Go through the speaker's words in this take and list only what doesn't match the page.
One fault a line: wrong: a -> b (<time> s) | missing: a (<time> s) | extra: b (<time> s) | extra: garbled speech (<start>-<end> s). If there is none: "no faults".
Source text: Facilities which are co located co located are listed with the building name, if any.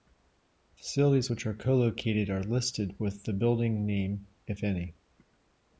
missing: co located (2.3 s)